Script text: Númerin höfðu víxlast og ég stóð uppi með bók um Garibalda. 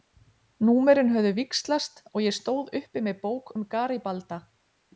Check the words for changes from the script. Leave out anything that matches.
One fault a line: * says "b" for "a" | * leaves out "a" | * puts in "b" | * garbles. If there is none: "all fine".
all fine